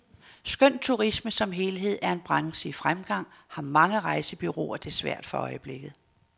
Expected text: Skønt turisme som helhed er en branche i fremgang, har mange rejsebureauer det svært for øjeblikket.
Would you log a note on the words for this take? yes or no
no